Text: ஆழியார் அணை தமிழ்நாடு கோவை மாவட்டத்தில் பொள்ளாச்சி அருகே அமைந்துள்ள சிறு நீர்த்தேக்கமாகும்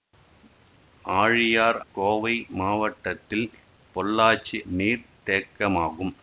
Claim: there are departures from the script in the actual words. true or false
true